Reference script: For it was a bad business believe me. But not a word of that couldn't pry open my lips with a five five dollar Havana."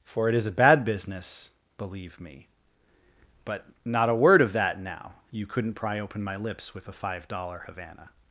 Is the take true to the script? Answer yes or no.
no